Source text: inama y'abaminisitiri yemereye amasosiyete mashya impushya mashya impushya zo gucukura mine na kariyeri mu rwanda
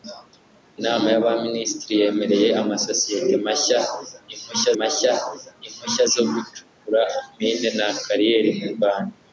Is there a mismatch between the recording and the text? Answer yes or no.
no